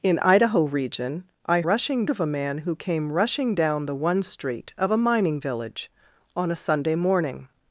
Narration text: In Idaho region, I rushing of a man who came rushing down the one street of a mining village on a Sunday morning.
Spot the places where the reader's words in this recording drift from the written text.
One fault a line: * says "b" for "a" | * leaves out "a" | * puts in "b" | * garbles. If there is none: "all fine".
all fine